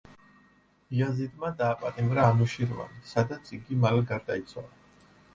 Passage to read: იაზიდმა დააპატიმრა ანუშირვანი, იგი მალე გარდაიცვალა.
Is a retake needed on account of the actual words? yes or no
yes